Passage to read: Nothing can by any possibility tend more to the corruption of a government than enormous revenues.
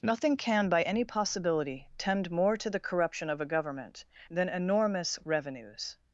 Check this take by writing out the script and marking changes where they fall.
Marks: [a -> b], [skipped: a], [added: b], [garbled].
Nothing can by any possibility tend more to the corruption of a government than enormous revenues.